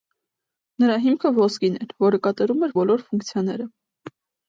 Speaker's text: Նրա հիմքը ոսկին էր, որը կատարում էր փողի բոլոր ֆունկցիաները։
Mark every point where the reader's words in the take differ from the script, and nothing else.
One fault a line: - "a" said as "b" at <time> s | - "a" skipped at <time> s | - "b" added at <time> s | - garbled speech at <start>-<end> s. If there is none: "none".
- "փողի" skipped at 2.8 s